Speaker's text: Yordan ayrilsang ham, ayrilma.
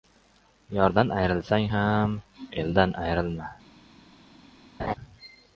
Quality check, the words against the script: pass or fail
fail